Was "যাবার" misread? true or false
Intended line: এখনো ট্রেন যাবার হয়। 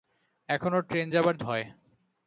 false